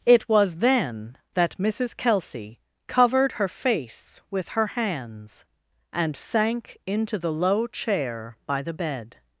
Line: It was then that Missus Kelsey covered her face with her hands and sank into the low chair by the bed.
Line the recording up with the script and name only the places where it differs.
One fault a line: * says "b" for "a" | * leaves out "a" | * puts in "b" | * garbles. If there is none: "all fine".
all fine